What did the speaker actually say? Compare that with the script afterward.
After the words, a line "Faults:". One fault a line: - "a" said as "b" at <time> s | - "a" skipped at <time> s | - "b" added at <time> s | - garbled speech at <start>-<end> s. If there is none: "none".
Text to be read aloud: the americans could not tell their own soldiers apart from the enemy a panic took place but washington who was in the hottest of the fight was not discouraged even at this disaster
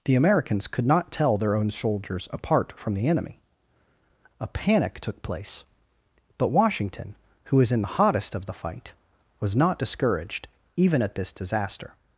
the americans could not tell their own soldiers apart from the enemy a panic took place but washington who was in the hottest of the fight was not discouraged even at this disaster
Faults:
none